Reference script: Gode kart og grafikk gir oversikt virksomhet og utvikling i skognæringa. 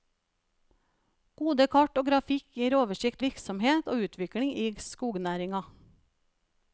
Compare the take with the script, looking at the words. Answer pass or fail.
pass